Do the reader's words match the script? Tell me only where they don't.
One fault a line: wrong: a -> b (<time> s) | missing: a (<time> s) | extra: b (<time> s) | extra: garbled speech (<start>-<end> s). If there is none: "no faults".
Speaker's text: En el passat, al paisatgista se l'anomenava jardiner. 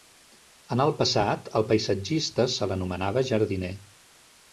no faults